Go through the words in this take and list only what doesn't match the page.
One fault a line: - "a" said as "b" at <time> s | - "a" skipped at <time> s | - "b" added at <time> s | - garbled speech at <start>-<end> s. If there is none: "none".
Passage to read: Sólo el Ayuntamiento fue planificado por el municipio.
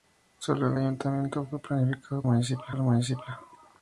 - "por" said as "municipio" at 2.2 s